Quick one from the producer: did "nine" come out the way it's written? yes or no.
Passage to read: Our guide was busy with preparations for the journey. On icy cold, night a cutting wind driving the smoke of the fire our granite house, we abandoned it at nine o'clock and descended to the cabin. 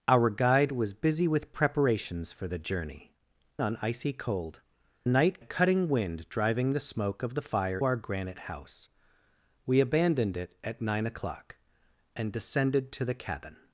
yes